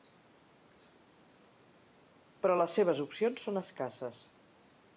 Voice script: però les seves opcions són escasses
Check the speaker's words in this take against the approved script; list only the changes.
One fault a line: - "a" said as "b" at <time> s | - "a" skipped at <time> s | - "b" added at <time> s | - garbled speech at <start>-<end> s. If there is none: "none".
none